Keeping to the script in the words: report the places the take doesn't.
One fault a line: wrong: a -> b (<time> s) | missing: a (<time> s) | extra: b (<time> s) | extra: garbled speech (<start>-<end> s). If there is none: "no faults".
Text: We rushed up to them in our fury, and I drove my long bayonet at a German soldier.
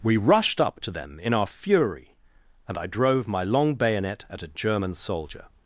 no faults